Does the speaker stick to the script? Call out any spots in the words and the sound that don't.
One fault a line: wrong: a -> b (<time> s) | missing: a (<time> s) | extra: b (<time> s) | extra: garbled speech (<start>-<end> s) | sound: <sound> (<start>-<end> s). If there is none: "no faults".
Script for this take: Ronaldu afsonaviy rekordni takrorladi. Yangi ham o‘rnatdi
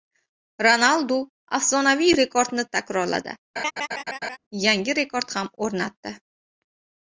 sound: laugh (3.6-4.4 s)
extra: rekord (5.0 s)